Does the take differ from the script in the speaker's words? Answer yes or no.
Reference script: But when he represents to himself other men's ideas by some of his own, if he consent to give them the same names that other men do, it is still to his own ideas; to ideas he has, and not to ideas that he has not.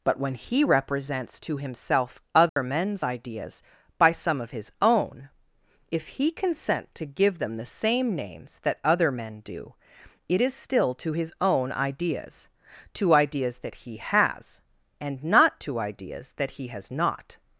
yes